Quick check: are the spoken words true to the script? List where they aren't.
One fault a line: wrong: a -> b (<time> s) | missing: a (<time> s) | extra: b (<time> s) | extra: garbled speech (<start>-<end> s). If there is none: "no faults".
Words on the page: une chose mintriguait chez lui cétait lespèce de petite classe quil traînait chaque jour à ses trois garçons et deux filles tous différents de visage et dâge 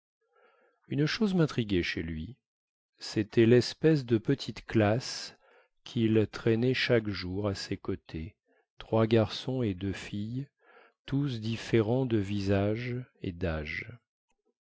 extra: côtés (7.8 s)